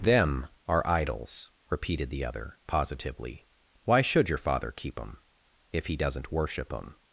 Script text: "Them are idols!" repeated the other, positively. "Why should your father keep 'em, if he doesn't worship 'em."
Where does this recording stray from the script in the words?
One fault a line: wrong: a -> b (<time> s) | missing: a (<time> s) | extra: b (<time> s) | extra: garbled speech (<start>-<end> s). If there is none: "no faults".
no faults